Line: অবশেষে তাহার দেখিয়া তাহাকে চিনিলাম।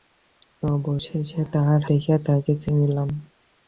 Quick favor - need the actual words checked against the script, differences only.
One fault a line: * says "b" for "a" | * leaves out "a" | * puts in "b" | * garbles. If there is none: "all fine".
all fine